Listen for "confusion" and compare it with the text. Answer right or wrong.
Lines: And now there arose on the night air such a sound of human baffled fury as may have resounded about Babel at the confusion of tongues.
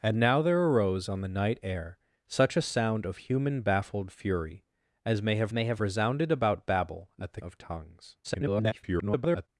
wrong